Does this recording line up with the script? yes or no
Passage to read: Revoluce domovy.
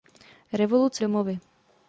yes